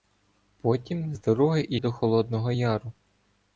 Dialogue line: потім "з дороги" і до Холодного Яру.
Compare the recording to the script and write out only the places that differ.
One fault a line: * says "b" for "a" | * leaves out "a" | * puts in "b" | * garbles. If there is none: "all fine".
all fine